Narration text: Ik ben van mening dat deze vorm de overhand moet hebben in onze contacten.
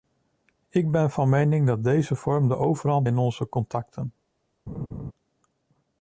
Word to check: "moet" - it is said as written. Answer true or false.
false